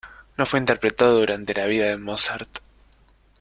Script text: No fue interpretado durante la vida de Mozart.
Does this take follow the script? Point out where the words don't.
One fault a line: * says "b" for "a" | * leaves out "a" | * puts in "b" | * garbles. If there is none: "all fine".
all fine